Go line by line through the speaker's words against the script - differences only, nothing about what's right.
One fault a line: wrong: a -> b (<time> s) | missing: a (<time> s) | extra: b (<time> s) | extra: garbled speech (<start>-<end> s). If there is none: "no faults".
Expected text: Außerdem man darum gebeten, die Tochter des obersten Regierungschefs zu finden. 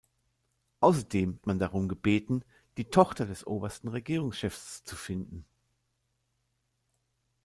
no faults